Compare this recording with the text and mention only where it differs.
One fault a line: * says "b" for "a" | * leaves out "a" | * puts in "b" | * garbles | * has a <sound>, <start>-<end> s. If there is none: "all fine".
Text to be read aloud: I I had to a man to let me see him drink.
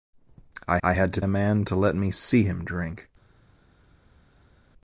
all fine